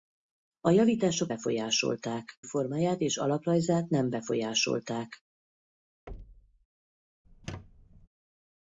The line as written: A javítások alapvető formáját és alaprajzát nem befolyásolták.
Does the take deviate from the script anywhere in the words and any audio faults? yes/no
yes